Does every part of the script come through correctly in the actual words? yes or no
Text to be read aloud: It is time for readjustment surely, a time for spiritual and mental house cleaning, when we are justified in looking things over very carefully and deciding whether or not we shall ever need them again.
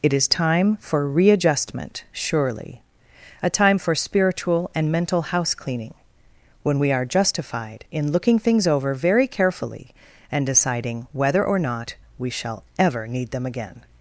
yes